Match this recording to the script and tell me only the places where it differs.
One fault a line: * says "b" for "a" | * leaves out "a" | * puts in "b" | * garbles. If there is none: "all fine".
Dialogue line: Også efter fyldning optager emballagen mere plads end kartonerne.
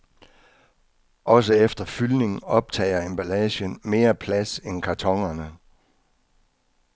all fine